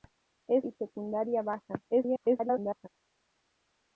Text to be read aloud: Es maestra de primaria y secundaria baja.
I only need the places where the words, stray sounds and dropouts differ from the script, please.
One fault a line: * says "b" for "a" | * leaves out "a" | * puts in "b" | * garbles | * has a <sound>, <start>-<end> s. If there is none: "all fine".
* leaves out "maestra de primaria"
* garbles